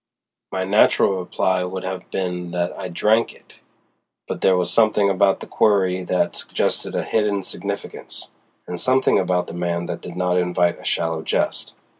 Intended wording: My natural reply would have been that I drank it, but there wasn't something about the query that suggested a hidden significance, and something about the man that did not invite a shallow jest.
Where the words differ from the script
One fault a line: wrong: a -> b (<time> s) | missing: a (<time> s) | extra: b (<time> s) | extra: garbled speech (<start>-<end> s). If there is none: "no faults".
wrong: wasn't -> was (4.6 s)